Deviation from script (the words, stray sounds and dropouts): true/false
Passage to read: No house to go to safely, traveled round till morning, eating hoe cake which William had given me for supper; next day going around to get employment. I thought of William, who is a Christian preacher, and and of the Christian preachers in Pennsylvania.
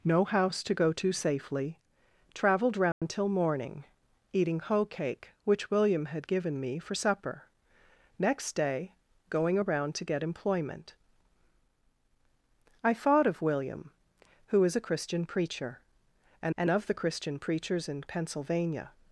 true